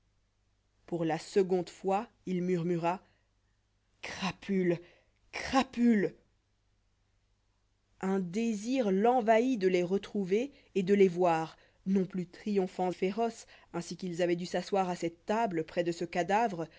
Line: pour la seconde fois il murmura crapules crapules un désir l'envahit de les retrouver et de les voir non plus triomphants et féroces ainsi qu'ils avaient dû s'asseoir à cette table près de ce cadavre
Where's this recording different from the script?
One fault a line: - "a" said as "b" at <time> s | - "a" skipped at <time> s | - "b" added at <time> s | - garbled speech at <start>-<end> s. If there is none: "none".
- "et" skipped at 12.9 s